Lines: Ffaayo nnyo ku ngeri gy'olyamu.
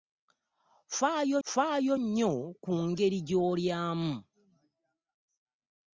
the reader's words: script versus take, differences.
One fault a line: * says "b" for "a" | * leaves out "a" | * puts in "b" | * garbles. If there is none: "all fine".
* puts in "ffaayo"